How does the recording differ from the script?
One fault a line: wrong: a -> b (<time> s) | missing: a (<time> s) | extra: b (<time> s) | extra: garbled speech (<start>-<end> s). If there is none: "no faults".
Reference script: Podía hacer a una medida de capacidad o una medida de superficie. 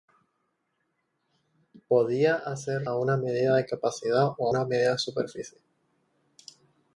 no faults